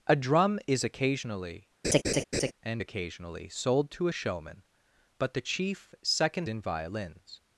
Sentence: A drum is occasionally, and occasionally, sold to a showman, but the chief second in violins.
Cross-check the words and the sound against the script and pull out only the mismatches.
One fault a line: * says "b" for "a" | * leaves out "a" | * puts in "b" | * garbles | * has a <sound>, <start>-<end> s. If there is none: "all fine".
* has a laugh, 1.8-2.5 s